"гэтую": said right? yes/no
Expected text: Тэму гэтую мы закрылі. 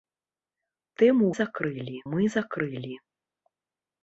no